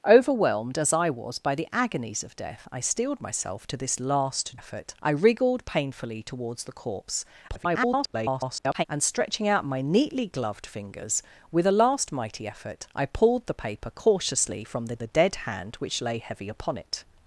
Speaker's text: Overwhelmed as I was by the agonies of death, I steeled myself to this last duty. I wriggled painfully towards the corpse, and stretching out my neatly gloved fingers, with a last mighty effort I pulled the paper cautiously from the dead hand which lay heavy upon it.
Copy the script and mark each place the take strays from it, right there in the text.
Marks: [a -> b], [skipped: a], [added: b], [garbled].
Overwhelmed as I was by the agonies of death, I steeled myself to this last [duty. -> effort] I wriggled painfully towards the corpse, [garbled] and stretching out my neatly gloved fingers, with a last mighty effort I pulled the paper cautiously from the [added: the] dead hand which lay heavy upon it.